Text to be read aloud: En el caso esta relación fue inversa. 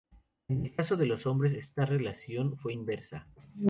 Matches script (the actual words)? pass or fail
fail